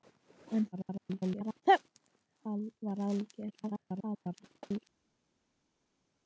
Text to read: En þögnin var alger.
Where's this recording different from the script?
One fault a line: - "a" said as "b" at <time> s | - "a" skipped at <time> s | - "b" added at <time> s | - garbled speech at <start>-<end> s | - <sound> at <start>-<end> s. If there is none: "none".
- garbled speech at 0.7-1.6 s
- garbled speech at 3.5-4.9 s